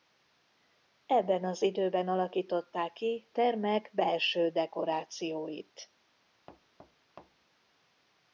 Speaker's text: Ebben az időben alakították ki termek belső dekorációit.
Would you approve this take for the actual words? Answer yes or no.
yes